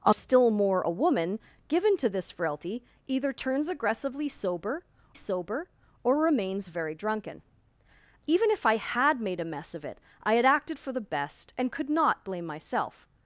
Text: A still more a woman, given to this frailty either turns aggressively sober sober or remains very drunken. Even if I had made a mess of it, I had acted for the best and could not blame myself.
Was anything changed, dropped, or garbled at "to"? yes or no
no